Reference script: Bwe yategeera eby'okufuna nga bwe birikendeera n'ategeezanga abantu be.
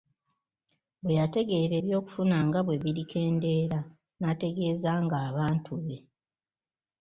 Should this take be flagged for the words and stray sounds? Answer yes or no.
no